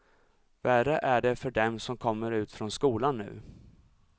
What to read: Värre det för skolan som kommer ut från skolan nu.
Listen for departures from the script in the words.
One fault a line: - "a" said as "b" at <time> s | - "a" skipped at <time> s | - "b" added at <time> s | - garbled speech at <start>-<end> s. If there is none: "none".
- "är" added at 1.0 s
- "skolan" said as "dem" at 1.5 s